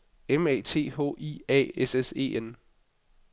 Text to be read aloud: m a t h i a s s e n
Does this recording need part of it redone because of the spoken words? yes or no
no